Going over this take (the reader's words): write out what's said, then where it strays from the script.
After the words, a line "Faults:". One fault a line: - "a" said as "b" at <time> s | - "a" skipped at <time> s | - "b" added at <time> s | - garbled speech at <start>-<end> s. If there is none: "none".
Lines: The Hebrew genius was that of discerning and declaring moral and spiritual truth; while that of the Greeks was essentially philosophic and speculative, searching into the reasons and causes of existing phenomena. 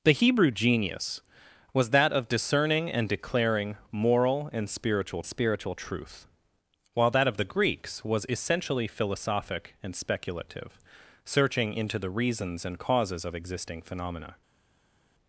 The Hebrew genius was that of discerning and declaring moral and spiritual spiritual truth; while that of the Greeks was essentially philosophic and speculative, searching into the reasons and causes of existing phenomena.
Faults:
- "spiritual" added at 5.2 s